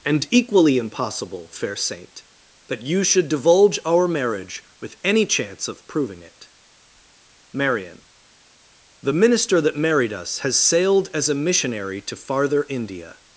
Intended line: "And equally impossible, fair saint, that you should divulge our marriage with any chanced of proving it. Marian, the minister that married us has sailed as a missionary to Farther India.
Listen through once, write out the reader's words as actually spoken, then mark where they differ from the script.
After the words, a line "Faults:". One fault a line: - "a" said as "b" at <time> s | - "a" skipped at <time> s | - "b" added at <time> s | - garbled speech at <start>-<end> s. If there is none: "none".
"And equally impossible, fair saint, that you should divulge our marriage with any chance of proving it. Marian, the minister that married us has sailed as a missionary to Farther India.
Faults:
- "chanced" said as "chance" at 5.2 s